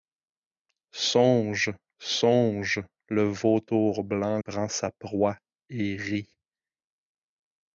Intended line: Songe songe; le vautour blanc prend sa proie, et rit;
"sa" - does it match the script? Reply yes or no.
yes